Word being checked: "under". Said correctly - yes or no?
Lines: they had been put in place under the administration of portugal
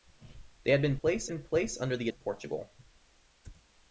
yes